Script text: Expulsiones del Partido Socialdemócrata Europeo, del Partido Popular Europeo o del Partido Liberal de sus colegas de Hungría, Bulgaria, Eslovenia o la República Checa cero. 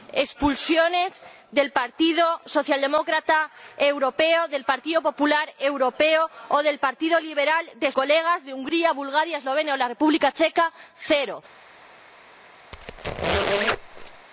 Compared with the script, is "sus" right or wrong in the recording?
wrong